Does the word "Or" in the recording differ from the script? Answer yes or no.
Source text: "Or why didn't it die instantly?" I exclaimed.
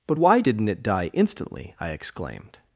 yes